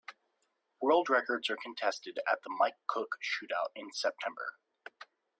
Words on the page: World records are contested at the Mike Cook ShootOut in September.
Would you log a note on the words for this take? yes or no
no